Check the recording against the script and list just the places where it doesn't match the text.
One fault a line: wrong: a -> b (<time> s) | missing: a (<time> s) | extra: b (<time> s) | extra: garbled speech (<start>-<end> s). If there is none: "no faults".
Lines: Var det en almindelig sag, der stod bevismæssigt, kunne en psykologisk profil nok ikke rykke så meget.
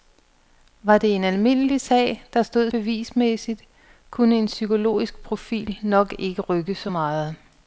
no faults